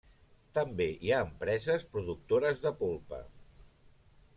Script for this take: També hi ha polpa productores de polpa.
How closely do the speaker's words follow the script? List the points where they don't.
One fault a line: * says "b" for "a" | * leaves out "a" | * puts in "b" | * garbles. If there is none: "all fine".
* says "empreses" for "polpa"